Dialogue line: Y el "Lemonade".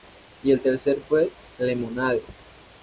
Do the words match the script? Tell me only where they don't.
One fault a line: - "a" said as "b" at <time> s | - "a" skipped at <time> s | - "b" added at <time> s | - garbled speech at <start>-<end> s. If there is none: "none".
- "tercer fue" added at 0.6 s